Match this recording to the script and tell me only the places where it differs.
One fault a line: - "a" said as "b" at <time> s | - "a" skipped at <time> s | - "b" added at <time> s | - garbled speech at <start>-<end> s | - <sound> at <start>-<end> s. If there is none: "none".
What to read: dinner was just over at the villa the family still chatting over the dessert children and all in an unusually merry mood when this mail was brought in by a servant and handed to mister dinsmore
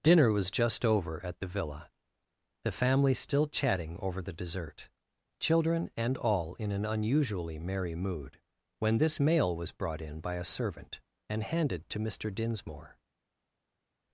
none